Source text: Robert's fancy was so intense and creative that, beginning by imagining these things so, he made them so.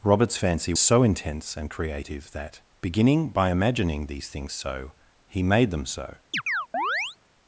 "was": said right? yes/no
no